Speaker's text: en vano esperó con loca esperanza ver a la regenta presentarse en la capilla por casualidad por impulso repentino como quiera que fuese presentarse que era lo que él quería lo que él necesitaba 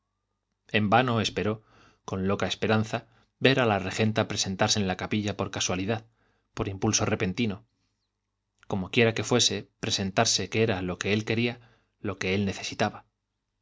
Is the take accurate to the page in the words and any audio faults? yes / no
yes